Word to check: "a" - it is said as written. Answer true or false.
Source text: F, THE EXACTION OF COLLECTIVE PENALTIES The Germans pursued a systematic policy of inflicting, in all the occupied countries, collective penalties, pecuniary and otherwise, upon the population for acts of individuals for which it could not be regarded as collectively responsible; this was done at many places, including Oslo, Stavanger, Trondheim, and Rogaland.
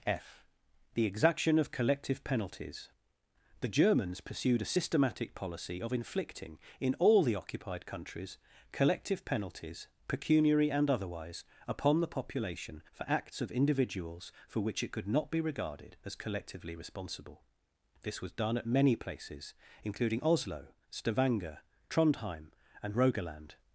true